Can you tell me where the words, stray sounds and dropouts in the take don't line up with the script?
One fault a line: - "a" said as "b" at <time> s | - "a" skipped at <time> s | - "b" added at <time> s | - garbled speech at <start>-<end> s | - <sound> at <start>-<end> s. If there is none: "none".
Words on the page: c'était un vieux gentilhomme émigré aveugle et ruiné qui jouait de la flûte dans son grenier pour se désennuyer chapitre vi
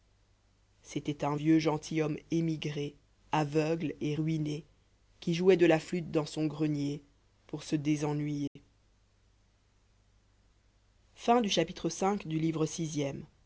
- dropout at 8.5-8.6 s